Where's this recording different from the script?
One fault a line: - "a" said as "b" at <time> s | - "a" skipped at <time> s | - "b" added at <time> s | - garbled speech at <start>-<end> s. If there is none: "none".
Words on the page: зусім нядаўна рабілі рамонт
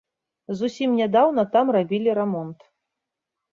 - "там" added at 1.6 s